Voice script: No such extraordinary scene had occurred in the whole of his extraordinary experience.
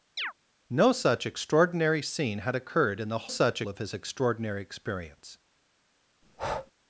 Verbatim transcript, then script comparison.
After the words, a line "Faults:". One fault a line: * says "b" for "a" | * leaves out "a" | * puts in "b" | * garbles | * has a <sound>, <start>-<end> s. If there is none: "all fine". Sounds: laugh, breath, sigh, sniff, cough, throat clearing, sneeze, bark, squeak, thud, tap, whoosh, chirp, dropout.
No such extraordinary scene had occurred in the such of his extraordinary experience.
Faults:
* has a chirp, 0.2-0.3 s
* says "such" for "whole"
* has a breath, 6.2-6.7 s